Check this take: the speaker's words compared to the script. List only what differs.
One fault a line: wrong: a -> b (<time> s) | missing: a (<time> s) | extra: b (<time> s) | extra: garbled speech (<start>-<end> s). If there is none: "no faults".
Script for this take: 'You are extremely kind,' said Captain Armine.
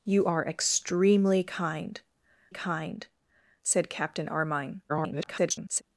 extra: kind (2.5 s)
extra: garbled speech (4.9-5.8 s)